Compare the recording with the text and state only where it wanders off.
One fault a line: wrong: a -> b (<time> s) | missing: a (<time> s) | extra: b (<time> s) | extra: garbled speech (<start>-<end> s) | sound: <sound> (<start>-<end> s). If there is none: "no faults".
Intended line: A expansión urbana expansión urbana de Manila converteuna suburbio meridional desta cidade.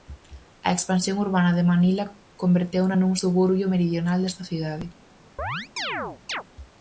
missing: expansión urbana (1.5 s)
extra: nun (3.0 s)
sound: chirp (5.4-6.4 s)